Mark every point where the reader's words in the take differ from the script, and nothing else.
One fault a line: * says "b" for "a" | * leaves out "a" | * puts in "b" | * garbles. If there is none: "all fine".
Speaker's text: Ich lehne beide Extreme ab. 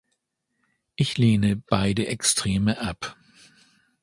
all fine